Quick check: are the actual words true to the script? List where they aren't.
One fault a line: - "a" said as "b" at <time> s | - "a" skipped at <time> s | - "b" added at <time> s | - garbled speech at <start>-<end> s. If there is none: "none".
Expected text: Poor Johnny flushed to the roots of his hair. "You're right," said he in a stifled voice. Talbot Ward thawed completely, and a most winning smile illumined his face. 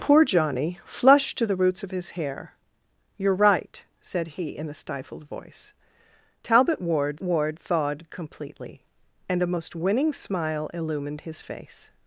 - "Ward" added at 7.2 s